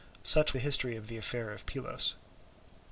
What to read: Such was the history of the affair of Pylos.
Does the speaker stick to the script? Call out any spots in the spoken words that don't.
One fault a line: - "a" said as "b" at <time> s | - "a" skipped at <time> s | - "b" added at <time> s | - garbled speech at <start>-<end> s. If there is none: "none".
- "was" skipped at 0.6 s